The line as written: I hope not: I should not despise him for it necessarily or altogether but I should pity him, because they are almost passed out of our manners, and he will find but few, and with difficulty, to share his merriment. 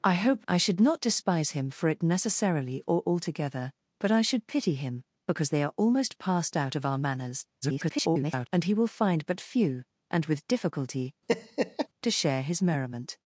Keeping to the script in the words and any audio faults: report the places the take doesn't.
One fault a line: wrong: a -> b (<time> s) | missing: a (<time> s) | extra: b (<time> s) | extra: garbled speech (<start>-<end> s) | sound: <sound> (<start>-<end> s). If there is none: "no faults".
missing: not (0.5 s)
extra: garbled speech (7.6-8.5 s)
sound: laugh (11.3-11.9 s)